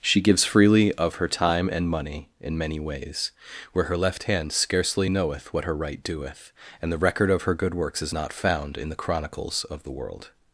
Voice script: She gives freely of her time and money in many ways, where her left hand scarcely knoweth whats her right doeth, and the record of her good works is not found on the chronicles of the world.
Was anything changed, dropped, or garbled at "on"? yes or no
yes